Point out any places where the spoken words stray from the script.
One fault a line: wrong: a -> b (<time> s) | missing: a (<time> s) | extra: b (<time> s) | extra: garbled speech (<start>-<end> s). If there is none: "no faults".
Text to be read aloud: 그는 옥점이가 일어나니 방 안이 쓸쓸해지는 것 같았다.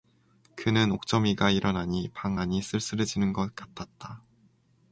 no faults